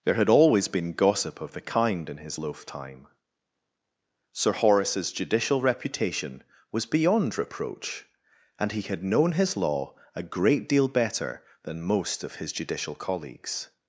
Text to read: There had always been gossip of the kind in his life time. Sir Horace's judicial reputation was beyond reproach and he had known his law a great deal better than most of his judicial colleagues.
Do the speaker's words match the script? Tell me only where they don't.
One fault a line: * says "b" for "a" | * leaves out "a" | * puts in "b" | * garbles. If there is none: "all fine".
* says "loaf" for "life"